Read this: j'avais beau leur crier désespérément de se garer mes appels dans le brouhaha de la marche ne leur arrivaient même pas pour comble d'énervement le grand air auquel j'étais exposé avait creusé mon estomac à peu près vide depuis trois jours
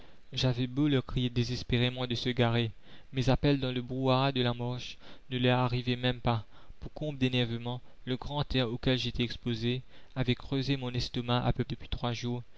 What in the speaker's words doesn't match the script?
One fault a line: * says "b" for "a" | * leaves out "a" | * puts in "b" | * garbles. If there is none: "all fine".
* leaves out "près vide"